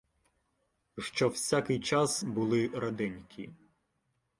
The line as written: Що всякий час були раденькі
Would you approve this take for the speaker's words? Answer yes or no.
yes